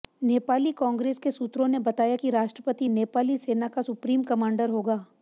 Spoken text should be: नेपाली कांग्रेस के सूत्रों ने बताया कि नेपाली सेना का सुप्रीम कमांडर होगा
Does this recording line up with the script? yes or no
no